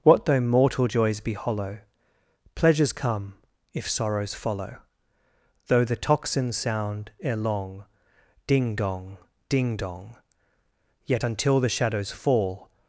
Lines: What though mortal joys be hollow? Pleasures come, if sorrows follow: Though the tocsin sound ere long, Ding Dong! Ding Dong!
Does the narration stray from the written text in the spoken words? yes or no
yes